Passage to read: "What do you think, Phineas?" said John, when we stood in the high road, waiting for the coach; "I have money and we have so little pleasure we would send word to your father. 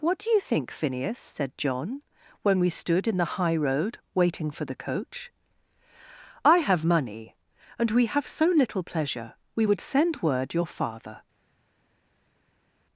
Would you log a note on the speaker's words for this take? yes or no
yes